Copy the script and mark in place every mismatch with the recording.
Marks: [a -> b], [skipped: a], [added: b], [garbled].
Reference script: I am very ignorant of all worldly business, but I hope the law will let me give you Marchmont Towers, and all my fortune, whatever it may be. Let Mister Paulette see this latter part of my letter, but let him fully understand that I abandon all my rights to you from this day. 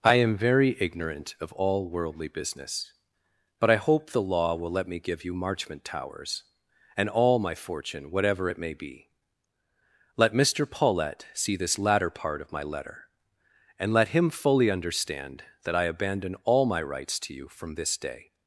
I am very ignorant of all worldly business, but I hope the law will let me give you Marchmont Towers, and all my fortune, whatever it may be. Let Mister Paulette see this latter part of my letter, [but -> and] let him fully understand that I abandon all my rights to you from this day.